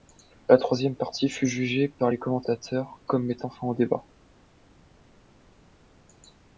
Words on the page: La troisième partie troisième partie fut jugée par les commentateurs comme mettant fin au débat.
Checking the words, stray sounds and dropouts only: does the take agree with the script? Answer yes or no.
no